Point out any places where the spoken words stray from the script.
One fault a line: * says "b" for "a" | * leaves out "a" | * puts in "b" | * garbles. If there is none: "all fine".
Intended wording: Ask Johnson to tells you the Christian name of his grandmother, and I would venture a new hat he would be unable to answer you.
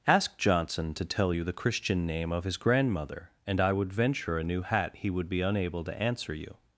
* says "tell" for "tells"